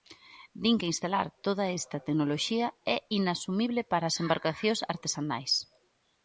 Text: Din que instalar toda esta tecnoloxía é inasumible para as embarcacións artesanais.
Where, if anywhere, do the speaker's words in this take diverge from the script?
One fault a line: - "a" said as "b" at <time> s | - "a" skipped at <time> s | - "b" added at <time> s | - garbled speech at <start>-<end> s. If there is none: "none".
none